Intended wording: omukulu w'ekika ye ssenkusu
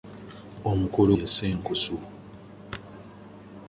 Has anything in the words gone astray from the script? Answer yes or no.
yes